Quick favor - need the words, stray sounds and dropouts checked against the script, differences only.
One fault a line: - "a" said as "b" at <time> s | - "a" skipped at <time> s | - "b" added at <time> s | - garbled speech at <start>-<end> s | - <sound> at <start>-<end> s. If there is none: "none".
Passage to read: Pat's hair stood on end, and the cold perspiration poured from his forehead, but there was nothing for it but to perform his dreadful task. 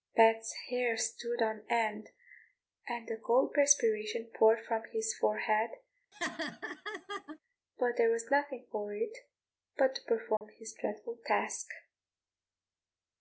- laugh at 6.1-7.4 s
- dropout at 10.4-10.4 s